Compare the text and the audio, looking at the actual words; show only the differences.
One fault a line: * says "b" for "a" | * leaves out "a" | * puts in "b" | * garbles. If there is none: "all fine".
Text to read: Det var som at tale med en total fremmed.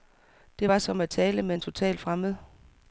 all fine